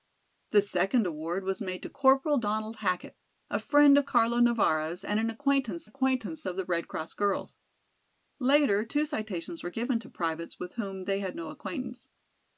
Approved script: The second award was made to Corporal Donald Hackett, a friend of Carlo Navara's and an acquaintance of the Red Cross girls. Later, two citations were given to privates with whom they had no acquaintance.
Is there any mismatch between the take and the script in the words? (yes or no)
yes